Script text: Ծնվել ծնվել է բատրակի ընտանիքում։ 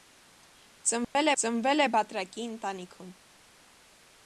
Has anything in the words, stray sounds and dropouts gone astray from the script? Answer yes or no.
yes